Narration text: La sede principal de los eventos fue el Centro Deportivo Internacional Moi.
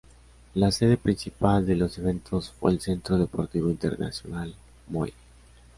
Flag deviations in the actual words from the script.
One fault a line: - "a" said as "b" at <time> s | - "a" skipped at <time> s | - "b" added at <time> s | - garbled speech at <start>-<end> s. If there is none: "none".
none